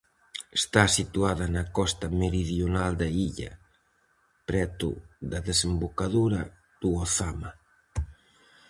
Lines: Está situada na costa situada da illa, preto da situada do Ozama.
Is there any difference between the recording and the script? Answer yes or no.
yes